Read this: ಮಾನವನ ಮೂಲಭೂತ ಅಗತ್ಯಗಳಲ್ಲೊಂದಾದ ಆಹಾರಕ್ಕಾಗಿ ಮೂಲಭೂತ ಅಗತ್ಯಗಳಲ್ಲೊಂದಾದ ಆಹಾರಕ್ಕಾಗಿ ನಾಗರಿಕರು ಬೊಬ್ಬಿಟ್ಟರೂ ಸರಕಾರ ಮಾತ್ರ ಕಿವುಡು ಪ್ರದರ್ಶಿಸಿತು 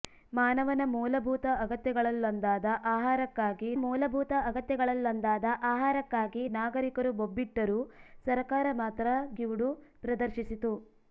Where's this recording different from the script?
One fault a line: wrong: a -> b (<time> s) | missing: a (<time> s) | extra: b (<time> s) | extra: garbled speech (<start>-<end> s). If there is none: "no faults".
no faults